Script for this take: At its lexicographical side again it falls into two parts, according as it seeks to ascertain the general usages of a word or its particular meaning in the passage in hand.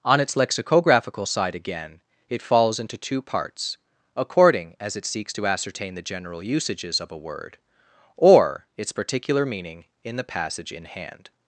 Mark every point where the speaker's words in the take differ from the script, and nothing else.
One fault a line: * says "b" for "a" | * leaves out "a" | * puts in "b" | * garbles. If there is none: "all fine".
* says "On" for "At"